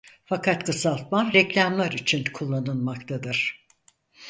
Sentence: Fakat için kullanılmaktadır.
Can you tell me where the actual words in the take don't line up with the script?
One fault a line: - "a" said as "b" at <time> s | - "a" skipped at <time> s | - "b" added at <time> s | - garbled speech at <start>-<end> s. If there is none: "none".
- "kısaltma reklamlar" added at 0.6 s